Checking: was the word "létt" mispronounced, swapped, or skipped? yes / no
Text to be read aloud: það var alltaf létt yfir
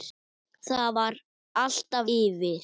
yes